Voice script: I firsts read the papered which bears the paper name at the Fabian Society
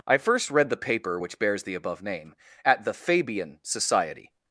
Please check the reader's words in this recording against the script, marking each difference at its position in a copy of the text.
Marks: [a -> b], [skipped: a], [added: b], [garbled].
I [firsts -> first] read the [papered -> paper] which bears the [paper -> above] name at the Fabian Society